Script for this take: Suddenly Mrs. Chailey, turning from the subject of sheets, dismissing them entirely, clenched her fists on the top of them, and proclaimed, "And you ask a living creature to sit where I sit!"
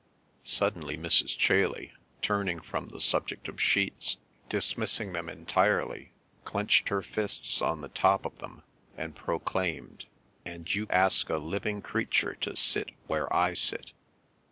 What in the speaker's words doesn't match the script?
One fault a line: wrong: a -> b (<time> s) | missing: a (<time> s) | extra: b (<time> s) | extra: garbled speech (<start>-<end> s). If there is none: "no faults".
no faults